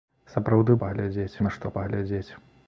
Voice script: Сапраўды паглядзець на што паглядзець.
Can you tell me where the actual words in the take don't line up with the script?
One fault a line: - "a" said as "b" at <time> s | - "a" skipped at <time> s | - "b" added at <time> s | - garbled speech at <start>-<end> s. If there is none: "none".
none